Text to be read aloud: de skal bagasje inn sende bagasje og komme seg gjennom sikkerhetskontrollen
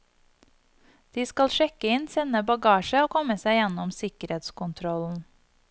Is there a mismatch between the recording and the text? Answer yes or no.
yes